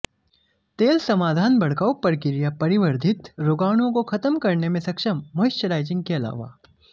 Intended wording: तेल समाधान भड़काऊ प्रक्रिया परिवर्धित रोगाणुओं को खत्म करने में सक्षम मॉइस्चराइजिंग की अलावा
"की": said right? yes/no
no